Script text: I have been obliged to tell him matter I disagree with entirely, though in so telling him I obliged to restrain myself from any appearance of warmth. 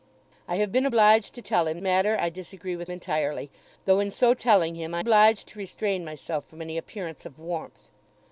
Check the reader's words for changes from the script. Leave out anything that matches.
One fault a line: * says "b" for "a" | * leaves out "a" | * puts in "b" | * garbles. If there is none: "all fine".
all fine